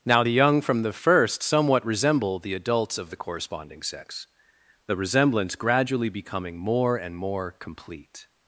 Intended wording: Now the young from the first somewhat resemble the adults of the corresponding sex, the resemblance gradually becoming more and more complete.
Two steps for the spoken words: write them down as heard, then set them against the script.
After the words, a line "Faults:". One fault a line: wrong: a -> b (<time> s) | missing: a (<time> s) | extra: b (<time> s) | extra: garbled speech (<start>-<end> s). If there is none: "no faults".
Now the young from the first somewhat resemble the adults of the corresponding sex, the resemblance gradually becoming more and more complete.
Faults:
no faults